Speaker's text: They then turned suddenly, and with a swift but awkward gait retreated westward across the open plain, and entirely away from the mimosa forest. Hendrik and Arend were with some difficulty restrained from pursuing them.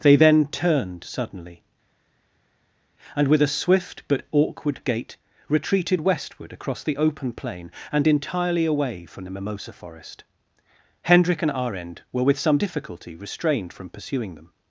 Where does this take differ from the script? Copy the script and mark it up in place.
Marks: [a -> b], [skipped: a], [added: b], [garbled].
They then turned suddenly, and with a swift but awkward gait retreated westward across the open plain, and entirely away from the mimosa forest. Hendrik and Arend were with some difficulty restrained from pursuing them.